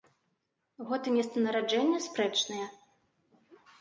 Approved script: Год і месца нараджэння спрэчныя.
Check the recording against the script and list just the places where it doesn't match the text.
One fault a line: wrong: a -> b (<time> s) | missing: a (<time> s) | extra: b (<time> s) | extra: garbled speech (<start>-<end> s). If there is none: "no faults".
no faults